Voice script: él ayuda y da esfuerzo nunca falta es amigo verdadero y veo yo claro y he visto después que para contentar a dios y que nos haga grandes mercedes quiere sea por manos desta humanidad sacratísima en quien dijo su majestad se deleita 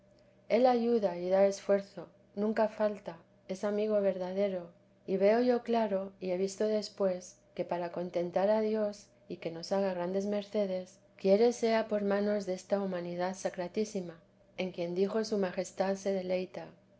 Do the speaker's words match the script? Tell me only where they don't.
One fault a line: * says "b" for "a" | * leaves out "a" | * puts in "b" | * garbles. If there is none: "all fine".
all fine